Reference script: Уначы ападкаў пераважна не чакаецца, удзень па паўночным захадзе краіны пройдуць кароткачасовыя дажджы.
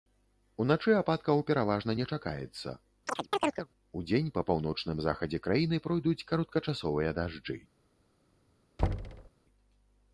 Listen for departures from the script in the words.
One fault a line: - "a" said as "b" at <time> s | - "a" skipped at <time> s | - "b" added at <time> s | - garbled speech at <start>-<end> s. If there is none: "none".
none